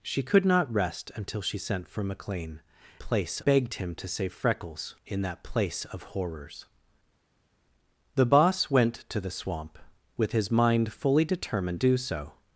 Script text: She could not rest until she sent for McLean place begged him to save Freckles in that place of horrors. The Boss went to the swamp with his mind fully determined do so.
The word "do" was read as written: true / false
true